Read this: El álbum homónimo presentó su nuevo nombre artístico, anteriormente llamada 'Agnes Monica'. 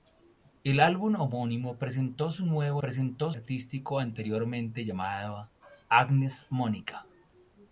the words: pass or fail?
fail